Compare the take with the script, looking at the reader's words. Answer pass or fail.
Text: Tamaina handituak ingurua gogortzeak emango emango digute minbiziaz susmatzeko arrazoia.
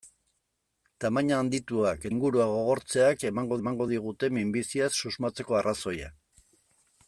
pass